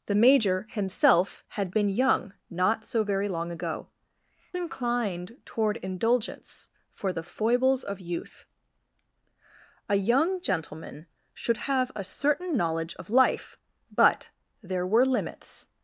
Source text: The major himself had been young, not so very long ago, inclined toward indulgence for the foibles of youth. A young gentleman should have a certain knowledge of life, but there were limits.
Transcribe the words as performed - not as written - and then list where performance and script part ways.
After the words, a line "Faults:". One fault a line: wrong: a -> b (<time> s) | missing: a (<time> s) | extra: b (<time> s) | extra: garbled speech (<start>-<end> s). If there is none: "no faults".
The major himself had been young, not so very long ago, inclined toward indulgence for the foibles of youth. A young gentleman should have a certain knowledge of life, but there were limits.
Faults:
no faults